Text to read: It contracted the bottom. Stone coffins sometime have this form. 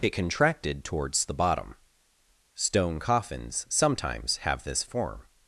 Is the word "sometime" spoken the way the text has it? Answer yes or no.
no